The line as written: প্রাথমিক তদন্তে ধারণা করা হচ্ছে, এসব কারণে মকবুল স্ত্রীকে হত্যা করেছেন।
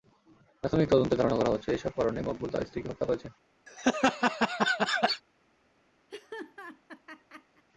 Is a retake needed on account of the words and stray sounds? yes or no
yes